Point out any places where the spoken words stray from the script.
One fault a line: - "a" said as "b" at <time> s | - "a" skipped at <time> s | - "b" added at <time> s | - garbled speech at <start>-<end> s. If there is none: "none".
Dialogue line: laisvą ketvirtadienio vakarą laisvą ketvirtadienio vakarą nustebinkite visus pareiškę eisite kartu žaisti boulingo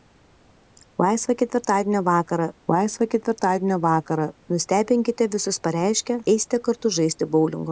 none